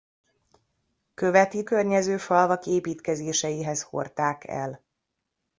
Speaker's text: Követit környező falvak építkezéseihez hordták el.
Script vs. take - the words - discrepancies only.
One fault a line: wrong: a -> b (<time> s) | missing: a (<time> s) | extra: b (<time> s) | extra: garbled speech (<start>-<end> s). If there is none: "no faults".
no faults